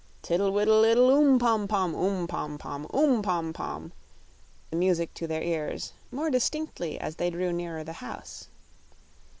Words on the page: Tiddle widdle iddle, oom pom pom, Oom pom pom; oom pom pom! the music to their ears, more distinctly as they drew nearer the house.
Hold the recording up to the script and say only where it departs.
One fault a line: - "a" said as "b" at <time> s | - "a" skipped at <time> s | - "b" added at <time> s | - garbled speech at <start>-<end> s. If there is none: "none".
none